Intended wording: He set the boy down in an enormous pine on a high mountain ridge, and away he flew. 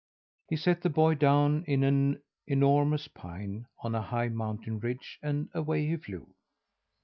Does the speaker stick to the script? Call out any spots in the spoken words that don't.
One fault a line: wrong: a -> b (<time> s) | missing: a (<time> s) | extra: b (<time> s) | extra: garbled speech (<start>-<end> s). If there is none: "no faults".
no faults